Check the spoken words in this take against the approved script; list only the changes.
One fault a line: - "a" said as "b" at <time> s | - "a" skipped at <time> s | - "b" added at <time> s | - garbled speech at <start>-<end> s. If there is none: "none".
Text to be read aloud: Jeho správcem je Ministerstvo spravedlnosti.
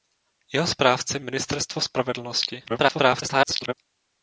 - "je" skipped at 1.2 s
- garbled speech at 2.7-3.7 s